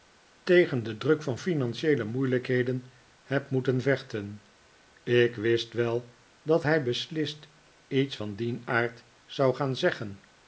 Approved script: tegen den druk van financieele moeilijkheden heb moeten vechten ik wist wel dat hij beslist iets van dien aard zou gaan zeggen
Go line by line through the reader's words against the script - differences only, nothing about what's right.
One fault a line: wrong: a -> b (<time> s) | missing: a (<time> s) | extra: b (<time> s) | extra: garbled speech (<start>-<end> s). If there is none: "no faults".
no faults